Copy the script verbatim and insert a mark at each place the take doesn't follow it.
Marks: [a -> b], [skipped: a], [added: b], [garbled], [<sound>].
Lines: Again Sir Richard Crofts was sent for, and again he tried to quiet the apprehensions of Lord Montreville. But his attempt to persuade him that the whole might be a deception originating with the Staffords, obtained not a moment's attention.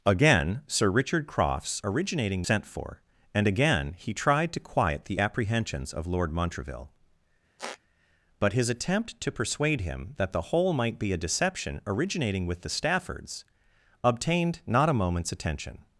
Again Sir Richard Crofts [was -> originating] sent for, and again he tried to quiet the apprehensions of Lord Montreville. [squeak] But his attempt to persuade him that the whole might be a deception originating with the Staffords, obtained not a moment's attention.